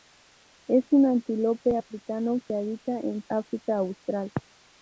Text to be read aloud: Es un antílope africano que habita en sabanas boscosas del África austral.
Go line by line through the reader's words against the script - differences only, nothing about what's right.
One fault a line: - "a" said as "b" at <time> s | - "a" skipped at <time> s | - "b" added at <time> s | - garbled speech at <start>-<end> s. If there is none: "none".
- "sabanas boscosas del" skipped at 3.2 s